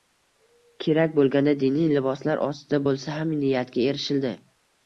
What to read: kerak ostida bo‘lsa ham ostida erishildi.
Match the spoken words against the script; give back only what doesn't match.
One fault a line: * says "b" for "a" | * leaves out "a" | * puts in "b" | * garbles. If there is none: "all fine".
* puts in "bo‘lganda diniy liboslar"
* says "niyatga" for "ostida"